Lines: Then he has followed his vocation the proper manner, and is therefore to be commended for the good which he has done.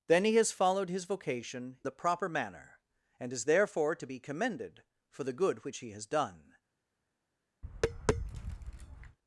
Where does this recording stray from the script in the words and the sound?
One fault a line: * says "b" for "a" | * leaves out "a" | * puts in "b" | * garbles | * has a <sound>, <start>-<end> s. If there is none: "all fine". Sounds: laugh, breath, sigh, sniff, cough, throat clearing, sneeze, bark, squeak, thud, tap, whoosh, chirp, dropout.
* has a tap, 7.6-9.2 s